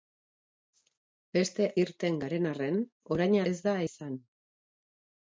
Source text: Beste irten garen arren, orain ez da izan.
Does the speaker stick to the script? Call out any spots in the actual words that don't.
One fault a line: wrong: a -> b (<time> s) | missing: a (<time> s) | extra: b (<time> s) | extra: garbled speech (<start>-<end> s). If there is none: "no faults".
no faults